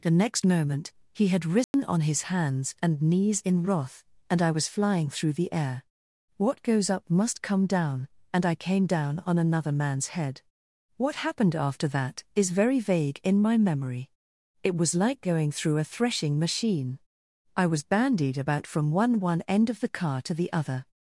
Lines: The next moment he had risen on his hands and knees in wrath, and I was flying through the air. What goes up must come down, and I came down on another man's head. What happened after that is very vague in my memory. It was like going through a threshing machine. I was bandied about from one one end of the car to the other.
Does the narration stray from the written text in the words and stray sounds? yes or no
yes